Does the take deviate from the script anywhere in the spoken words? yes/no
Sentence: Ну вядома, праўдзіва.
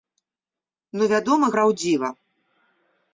no